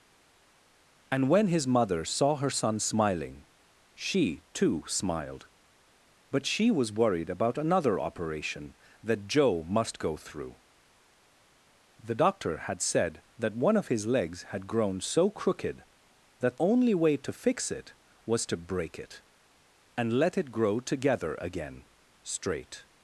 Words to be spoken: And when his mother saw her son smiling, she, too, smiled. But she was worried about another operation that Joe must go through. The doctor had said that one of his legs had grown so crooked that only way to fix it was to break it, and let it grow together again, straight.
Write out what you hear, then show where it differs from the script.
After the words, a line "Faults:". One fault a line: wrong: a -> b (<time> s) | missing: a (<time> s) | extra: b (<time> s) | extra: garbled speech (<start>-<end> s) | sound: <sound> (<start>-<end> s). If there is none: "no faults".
And when his mother saw her son smiling, she, too, smiled. But she was worried about another operation that Joe must go through. The doctor had said that one of his legs had grown so crooked that only way to fix it was to break it, and let it grow together again, straight.
Faults:
no faults